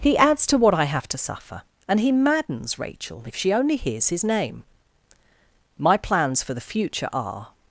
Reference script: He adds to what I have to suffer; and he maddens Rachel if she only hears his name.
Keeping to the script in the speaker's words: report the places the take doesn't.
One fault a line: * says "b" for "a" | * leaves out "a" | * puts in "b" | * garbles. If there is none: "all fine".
* puts in "My plans for the future are"